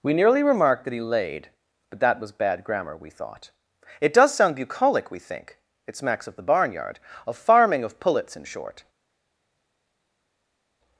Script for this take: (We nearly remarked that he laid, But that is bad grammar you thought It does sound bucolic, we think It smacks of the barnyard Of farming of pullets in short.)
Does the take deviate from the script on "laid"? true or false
false